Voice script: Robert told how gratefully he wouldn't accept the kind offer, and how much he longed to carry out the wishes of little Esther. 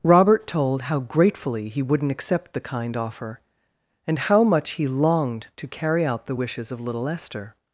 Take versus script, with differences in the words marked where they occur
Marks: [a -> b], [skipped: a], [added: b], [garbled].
Robert told how gratefully he wouldn't accept the kind offer, and how much he longed to carry out the wishes of little Esther.